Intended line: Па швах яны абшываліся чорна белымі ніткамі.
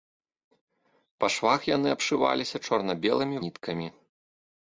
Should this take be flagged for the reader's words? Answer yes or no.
no